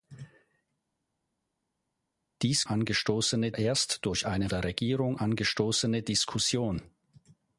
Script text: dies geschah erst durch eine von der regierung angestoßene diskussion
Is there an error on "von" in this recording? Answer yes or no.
yes